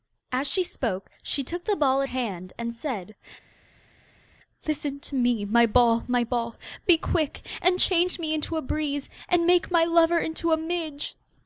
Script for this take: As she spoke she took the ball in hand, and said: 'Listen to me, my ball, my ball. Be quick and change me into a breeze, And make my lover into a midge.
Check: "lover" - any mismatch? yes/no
no